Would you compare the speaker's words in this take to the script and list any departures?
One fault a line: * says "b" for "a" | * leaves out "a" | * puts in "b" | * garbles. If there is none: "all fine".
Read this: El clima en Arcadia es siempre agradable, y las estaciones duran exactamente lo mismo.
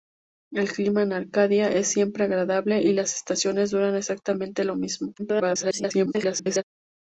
* garbles